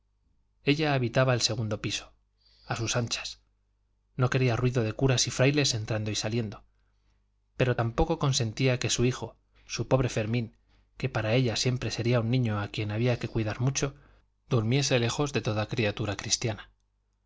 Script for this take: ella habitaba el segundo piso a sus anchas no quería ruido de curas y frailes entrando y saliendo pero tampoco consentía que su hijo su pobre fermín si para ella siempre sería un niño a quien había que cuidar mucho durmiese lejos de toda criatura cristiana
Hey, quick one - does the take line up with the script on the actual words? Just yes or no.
no